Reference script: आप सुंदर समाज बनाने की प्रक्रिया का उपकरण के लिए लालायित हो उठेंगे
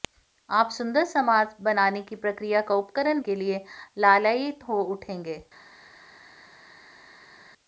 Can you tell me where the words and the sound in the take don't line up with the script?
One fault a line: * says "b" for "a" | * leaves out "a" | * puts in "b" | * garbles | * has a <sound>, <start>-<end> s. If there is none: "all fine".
all fine